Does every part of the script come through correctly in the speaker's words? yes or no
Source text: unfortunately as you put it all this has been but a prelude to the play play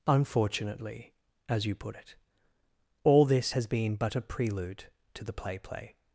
yes